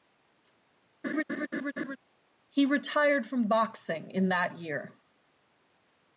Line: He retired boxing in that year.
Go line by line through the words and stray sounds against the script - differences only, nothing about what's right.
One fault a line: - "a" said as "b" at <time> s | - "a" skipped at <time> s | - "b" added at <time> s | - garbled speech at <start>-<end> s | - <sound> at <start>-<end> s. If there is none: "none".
- laugh at 1.0-2.0 s
- "from" added at 3.3 s